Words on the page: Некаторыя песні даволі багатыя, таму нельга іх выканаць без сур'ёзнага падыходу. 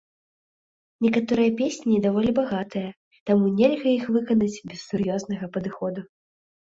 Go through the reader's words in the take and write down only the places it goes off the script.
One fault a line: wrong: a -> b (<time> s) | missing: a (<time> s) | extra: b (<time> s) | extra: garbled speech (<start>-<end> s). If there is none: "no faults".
no faults